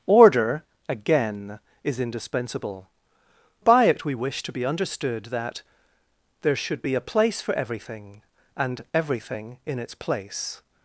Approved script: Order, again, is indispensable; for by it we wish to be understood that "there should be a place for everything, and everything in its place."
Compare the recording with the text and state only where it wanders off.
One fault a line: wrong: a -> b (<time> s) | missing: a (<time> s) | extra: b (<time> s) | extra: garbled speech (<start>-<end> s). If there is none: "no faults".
missing: for (2.9 s)